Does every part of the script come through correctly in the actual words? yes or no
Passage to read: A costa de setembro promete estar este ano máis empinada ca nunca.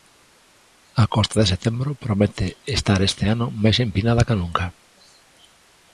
yes